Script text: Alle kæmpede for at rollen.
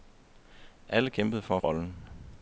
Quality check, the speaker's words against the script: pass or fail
pass